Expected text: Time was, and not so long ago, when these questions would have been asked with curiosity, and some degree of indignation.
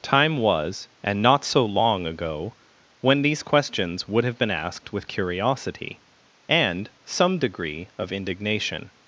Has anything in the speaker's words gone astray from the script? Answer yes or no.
no